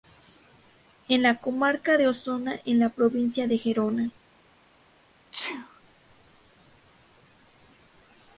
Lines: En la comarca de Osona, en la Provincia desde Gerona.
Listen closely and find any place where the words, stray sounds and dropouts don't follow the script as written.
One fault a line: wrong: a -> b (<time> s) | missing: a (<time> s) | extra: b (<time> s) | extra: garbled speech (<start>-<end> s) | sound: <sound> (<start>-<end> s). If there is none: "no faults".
wrong: desde -> de (3.5 s)
sound: sneeze (5.3-5.8 s)